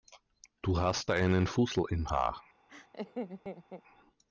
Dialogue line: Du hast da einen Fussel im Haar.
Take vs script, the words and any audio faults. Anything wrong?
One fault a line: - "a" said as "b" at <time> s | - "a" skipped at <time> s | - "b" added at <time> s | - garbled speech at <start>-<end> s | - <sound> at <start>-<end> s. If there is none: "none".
- laugh at 2.7-3.8 s